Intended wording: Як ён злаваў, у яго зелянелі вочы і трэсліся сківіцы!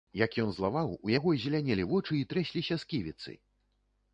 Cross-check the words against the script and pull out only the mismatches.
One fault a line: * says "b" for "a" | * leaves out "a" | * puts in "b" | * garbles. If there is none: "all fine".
all fine